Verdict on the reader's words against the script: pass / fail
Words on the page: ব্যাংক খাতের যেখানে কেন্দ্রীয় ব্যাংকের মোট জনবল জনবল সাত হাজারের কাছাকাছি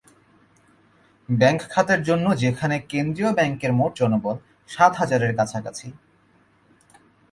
fail